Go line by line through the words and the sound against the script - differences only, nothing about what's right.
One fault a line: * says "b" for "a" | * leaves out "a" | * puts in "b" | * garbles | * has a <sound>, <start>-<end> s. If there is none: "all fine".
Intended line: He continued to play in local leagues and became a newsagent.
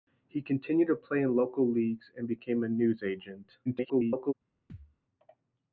* garbles
* has a thud, 4.7-5.0 s